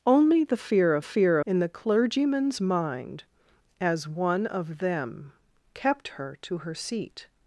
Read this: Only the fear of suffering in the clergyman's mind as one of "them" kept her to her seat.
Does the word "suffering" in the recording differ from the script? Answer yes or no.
yes